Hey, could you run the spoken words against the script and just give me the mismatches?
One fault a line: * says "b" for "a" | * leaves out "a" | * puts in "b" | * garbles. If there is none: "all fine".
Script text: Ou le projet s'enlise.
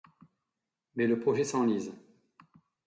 * says "Mais" for "Ou"